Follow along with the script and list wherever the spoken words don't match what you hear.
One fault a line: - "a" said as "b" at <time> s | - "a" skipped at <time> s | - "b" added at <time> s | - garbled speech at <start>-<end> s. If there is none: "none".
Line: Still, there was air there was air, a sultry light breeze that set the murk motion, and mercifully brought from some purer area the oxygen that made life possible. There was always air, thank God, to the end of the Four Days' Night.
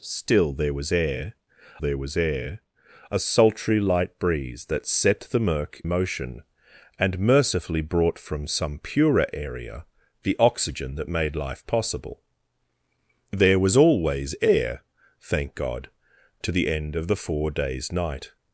none